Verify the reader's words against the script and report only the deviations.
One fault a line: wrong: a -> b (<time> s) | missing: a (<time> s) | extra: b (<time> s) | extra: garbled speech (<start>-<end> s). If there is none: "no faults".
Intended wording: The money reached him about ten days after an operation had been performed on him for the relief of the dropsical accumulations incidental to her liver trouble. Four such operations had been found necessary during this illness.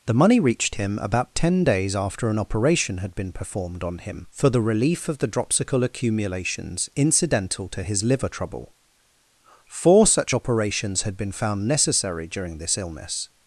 wrong: her -> his (7.8 s)